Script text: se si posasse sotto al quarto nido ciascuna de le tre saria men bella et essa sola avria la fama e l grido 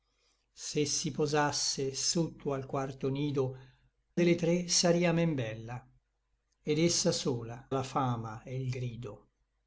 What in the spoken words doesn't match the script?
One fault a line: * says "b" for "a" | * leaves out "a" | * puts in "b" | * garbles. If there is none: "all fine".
* leaves out "ciascuna"
* leaves out "avria"